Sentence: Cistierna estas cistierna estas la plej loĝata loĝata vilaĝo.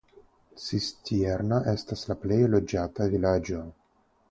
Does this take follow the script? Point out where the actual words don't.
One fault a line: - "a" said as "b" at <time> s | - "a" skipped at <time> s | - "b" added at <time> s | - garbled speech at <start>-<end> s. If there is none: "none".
- "cistierna estas" skipped at 2.0 s
- "loĝata" skipped at 3.1 s